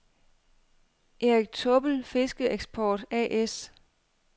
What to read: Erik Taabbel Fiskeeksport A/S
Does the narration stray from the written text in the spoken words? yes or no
no